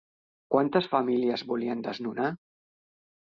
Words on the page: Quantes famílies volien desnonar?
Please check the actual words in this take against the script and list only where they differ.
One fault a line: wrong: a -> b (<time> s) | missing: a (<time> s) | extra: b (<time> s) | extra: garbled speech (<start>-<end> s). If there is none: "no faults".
no faults